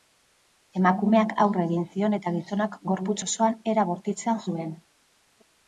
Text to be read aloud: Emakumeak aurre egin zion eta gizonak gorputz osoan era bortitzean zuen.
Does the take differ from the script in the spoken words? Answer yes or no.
no